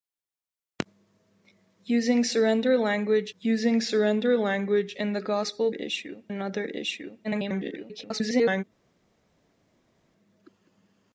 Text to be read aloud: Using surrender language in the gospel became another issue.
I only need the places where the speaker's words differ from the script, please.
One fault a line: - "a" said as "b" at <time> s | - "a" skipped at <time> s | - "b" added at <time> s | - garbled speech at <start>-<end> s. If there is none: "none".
- "using surrender language" added at 3.4 s
- "became" said as "issue" at 5.7 s
- garbled speech at 7.2-8.6 s